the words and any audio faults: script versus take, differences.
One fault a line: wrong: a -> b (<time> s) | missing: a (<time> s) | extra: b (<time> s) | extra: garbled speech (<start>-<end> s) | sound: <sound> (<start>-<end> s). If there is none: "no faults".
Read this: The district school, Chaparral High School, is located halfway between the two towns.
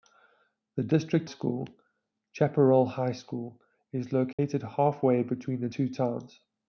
sound: dropout (4.3-4.4 s)